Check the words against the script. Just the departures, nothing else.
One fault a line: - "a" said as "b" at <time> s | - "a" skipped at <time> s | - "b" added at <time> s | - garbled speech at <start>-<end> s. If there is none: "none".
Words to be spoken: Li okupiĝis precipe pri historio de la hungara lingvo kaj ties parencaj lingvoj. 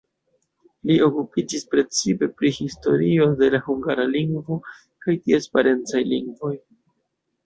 none